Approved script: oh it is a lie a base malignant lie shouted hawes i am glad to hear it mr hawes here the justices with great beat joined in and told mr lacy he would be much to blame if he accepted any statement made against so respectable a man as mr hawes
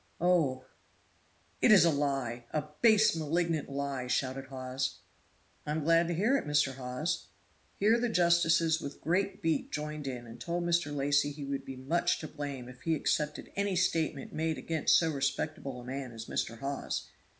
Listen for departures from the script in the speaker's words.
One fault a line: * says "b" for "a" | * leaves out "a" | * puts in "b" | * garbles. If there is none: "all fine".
all fine